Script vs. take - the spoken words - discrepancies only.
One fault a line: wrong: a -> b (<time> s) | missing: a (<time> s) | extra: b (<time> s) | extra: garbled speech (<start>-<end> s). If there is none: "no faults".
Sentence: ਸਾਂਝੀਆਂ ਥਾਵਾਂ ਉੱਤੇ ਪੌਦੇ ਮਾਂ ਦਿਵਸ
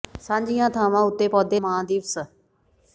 no faults